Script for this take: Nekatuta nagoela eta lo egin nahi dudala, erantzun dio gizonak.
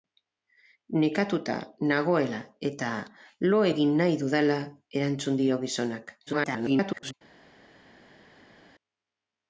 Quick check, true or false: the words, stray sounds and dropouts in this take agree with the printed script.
false